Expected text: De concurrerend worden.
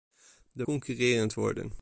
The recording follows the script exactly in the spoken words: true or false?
true